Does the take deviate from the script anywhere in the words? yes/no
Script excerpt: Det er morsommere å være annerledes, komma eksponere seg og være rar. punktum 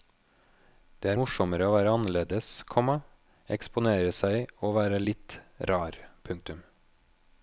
yes